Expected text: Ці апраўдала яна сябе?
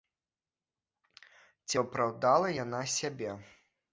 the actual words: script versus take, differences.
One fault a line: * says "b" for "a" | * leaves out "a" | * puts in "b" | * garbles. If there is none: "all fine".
all fine